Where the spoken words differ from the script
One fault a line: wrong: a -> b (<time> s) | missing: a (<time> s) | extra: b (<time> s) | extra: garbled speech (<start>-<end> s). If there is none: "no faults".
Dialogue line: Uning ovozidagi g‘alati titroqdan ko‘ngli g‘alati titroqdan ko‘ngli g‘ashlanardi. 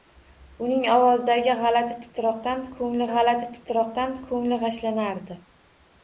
no faults